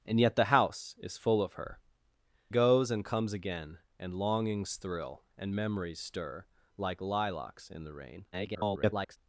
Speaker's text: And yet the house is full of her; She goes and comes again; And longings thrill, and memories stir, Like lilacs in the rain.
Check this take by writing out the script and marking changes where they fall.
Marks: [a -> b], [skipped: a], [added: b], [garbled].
And yet the house is full of her; [skipped: She] goes and comes again; And longings thrill, and memories stir, Like lilacs in the rain. [garbled]